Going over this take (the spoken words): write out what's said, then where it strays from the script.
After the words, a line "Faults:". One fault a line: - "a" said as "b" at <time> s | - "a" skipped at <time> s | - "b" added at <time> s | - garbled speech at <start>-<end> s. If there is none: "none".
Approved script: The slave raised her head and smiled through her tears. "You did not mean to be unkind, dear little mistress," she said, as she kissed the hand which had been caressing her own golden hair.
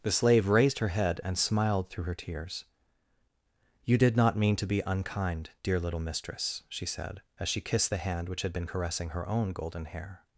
The slave raised her head and smiled through her tears. "You did not mean to be unkind, dear little mistress," she said, as she kissed the hand which had been caressing her own golden hair.
Faults:
none